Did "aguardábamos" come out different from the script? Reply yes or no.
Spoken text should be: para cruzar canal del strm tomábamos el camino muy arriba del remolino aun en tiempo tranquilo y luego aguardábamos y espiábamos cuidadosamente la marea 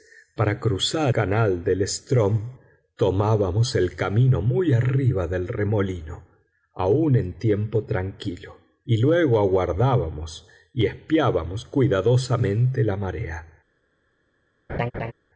no